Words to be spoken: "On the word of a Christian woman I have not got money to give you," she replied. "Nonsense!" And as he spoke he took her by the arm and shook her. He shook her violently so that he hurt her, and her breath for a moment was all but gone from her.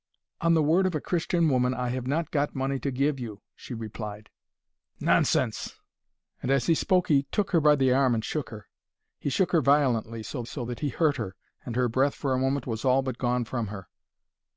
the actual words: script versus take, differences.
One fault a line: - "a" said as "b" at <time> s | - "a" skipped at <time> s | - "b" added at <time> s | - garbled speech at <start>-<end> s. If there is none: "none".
- "so" added at 10.4 s